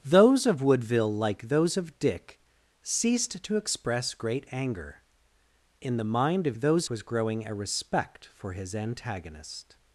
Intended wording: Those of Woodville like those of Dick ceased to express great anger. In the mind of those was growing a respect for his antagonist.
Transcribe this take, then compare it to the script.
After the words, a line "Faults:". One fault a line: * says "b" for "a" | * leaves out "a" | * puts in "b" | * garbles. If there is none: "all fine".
Those of Woodville like those of Dick ceased to express great anger. In the mind of those was growing a respect for his antagonist.
Faults:
all fine